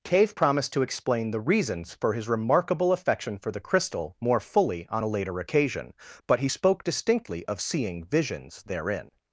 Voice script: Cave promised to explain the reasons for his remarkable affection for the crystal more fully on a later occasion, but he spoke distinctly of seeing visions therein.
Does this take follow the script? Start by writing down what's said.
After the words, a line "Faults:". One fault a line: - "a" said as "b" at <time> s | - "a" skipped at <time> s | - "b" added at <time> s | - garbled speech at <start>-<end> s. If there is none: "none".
Cave promised to explain the reasons for his remarkable affection for the crystal more fully on a later occasion, but he spoke distinctly of seeing visions therein.
Faults:
none